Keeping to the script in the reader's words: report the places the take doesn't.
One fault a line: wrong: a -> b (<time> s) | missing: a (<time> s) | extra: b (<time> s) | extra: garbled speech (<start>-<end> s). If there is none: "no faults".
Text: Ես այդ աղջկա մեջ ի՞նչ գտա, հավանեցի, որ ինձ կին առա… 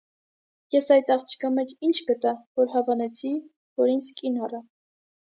extra: որ (2.6 s)